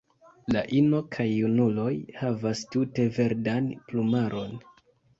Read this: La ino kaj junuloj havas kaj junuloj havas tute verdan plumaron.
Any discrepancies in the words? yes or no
yes